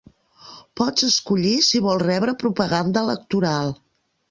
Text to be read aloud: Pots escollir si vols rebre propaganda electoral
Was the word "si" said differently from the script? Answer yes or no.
no